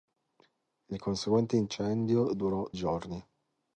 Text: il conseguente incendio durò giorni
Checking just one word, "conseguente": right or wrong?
right